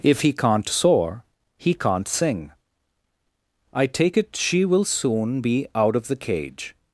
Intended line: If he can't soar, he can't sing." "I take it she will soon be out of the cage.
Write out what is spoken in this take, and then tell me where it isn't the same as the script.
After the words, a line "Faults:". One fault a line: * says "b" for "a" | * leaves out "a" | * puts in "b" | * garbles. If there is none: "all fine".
If he can't soar, he can't sing." "I take it she will soon be out of the cage.
Faults:
all fine